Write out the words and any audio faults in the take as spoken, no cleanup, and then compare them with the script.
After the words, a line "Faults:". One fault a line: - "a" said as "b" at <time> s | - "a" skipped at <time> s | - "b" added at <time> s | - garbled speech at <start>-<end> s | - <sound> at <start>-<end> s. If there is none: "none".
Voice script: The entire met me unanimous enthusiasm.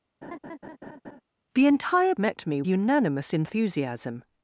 The entire met me unanimous enthusiasm.
Faults:
- laugh at 0.2-1.2 s